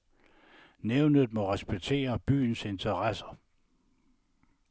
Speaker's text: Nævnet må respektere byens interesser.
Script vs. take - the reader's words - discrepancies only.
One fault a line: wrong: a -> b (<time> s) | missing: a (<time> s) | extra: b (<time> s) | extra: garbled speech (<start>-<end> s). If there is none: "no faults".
no faults